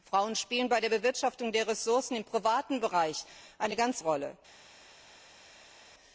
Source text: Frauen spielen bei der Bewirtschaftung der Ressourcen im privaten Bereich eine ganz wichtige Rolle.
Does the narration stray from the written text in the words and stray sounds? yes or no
yes